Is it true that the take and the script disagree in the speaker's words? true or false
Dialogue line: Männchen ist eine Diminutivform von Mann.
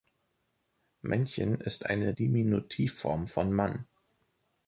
false